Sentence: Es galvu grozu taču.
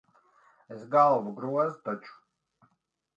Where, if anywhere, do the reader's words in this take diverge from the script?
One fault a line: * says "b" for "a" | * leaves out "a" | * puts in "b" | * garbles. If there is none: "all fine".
all fine